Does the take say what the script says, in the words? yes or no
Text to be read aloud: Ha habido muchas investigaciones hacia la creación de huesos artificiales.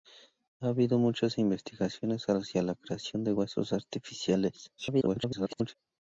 no